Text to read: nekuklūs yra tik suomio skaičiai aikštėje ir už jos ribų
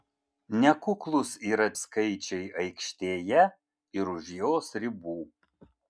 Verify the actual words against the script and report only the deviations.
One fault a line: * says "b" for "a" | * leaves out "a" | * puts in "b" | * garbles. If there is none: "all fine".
* leaves out "tik suomio"